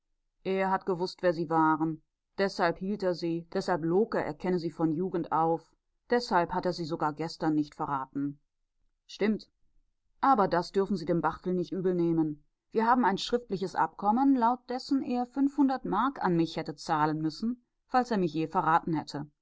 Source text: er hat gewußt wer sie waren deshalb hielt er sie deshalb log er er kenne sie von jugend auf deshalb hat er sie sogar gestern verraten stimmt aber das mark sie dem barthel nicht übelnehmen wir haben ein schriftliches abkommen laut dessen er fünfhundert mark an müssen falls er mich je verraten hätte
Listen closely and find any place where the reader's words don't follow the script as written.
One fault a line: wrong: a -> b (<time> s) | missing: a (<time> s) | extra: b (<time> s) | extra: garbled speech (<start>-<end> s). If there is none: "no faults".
extra: nicht (7.5 s)
wrong: mark -> dürfen (10.7 s)
extra: mich hätte zahlen (16.4 s)